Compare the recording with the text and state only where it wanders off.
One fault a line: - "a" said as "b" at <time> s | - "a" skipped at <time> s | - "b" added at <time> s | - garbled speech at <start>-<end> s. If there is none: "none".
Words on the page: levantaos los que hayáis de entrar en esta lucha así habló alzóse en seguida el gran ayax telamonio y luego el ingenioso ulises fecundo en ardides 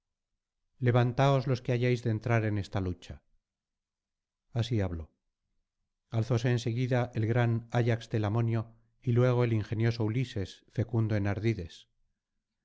none